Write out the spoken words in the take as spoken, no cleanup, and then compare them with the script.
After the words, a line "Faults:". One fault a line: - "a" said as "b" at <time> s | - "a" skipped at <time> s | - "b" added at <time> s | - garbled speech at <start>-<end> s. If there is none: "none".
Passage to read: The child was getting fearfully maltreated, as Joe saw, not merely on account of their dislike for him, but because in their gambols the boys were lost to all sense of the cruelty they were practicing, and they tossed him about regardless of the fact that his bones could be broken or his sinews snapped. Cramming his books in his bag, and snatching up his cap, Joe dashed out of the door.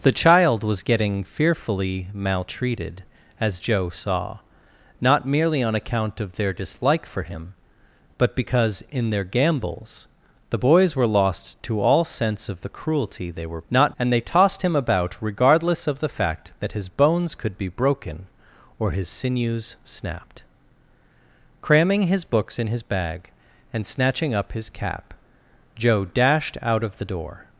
The child was getting fearfully maltreated, as Joe saw, not merely on account of their dislike for him, but because in their gambols the boys were lost to all sense of the cruelty they were not, and they tossed him about regardless of the fact that his bones could be broken or his sinews snapped. Cramming his books in his bag, and snatching up his cap, Joe dashed out of the door.
Faults:
- "practicing" said as "not" at 13.7 s